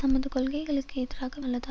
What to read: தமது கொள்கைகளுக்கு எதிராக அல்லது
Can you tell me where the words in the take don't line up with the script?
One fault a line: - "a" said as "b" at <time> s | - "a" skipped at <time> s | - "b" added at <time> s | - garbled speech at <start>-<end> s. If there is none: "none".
none